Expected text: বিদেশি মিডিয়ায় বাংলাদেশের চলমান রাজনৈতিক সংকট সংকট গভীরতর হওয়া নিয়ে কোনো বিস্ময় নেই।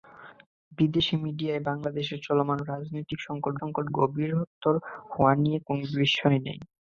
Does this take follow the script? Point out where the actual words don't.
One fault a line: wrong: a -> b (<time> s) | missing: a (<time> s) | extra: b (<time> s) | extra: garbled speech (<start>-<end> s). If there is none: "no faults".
no faults